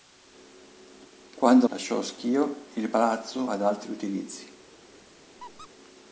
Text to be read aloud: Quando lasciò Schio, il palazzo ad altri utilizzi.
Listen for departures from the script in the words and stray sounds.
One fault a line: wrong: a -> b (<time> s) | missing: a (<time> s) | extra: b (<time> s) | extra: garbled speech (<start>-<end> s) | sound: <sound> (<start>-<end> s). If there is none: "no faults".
sound: squeak (5.4-5.7 s)